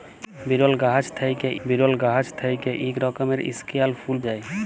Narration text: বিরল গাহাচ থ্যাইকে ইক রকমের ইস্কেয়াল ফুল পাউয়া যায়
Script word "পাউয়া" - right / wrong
wrong